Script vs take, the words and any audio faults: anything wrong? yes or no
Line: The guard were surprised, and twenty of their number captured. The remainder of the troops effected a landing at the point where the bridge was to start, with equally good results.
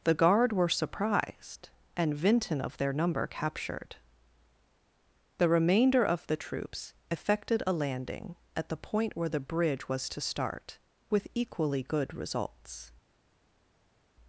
yes